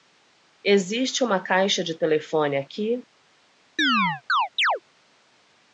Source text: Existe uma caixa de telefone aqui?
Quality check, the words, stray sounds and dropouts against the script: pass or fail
fail